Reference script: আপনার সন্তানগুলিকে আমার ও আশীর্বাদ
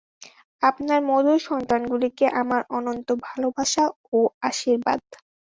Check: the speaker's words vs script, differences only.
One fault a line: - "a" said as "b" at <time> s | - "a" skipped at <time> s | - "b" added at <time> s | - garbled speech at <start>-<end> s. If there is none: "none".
- "মধুর" added at 1.1 s
- "অনন্ত ভালবাসা" added at 2.8 s